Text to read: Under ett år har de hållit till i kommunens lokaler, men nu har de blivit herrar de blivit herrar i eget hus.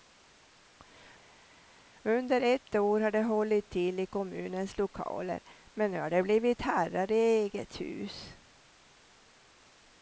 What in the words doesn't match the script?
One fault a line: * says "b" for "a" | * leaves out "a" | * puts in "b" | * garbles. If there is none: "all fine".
* leaves out "de blivit herrar"